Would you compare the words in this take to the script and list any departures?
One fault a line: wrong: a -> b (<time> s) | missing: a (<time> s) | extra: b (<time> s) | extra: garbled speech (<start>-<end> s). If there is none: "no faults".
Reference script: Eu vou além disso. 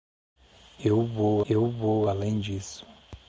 extra: eu vou (1.5 s)